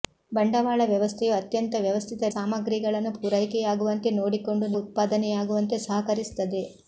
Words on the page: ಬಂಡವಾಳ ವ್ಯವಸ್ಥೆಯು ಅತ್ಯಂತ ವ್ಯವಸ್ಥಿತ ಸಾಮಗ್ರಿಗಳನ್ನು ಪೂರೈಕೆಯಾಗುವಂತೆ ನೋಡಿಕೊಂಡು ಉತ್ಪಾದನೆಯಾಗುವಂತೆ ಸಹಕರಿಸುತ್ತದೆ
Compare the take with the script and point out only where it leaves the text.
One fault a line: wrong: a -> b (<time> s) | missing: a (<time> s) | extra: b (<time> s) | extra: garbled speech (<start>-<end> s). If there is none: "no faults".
no faults